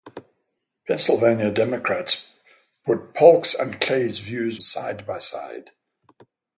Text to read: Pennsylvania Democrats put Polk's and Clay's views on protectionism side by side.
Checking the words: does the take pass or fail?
fail